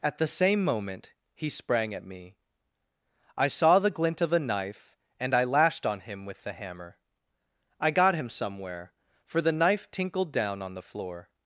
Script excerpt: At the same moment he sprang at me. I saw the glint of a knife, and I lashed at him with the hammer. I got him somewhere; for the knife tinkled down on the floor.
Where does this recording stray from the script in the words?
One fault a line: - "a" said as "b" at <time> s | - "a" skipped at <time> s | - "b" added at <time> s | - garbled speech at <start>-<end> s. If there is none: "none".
- "at" said as "on" at 5.8 s